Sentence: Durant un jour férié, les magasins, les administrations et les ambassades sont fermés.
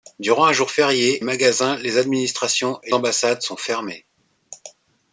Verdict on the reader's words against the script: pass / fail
fail